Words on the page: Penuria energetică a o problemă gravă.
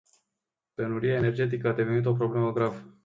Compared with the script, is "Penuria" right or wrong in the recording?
right